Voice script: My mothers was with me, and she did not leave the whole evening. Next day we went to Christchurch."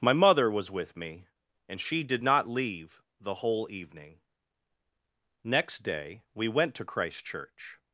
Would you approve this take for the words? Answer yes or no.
no